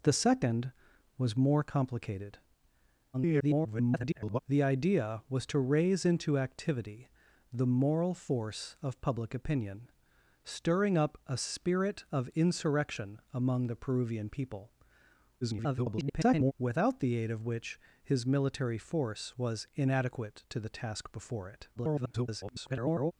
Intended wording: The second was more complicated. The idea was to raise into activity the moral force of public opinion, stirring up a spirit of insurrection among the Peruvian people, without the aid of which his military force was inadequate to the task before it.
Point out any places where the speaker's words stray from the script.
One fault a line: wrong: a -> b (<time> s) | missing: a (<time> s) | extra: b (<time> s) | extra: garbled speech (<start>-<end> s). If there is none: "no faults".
extra: garbled speech (3.1-4.4 s)
extra: garbled speech (15.4-16.5 s)
extra: garbled speech (21.8-23.1 s)